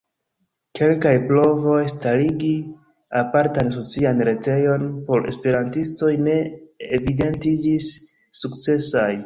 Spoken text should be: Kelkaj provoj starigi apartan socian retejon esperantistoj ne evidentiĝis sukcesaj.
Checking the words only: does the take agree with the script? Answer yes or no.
no